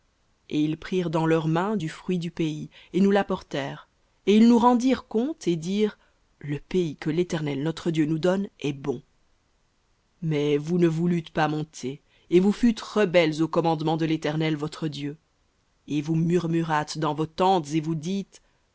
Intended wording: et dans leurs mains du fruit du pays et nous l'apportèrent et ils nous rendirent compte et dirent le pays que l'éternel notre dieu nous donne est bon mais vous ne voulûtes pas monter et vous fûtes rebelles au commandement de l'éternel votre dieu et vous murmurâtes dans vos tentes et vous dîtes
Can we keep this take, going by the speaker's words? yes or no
no